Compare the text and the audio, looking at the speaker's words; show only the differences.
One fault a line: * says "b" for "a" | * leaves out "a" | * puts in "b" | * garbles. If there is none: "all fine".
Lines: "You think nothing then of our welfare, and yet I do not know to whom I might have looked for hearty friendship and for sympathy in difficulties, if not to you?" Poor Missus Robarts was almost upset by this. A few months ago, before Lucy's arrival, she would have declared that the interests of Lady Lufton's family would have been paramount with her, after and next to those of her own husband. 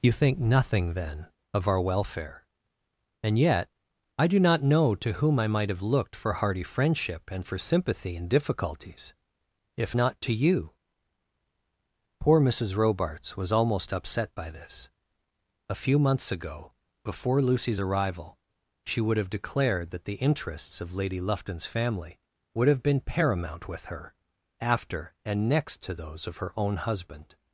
all fine